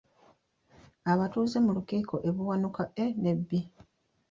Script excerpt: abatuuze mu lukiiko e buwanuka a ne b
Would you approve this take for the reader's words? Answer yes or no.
yes